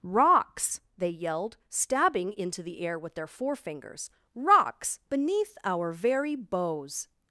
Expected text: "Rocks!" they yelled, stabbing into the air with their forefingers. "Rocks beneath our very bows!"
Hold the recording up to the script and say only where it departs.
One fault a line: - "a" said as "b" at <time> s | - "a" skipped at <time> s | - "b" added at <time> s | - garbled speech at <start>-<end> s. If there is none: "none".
none